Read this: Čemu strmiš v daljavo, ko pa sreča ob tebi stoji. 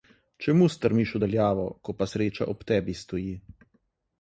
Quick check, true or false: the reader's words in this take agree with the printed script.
true